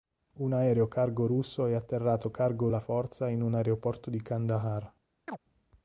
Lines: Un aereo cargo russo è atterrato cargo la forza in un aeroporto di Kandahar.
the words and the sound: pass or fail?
fail